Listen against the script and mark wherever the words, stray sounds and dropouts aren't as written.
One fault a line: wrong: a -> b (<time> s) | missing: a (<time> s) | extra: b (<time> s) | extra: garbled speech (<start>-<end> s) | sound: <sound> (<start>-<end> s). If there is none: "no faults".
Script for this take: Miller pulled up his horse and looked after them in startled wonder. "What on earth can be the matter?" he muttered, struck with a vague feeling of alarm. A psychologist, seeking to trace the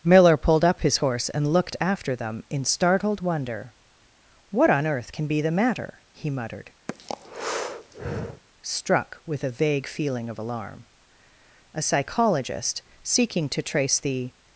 sound: breath (6.9-8.4 s)